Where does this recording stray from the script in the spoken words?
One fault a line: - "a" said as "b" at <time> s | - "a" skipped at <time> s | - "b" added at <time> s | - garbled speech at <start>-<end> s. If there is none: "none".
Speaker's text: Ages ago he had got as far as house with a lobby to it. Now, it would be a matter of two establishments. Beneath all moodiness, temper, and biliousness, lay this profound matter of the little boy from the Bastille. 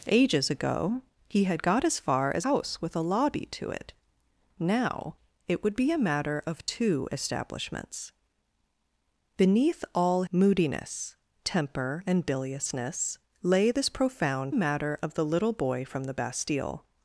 none